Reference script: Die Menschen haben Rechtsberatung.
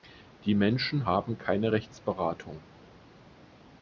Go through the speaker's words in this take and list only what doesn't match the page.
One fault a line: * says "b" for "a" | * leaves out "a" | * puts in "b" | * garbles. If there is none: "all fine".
* puts in "keine"